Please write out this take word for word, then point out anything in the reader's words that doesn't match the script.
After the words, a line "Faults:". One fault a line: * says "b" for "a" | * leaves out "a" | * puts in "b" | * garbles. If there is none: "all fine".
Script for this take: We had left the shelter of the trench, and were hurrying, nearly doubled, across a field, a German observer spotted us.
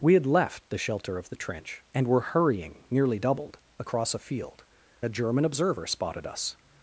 We had left the shelter of the trench, and were hurrying, nearly doubled, across a field, a German observer spotted us.
Faults:
all fine